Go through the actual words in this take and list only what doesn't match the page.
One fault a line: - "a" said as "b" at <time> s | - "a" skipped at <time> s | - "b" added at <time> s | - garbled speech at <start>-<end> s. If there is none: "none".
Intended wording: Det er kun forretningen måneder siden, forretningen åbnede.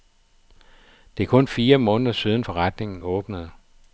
- "forretningen" said as "fire" at 1.5 s